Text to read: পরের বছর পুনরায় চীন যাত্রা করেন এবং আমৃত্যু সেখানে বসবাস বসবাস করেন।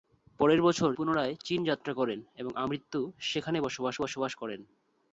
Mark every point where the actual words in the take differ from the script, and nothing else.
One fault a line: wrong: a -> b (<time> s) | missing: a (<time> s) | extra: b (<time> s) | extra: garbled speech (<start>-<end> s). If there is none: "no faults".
no faults